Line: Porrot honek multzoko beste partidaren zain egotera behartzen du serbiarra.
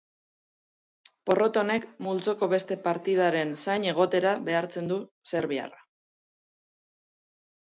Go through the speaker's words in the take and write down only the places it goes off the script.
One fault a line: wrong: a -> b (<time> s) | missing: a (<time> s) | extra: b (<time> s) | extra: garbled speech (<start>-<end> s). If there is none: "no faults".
no faults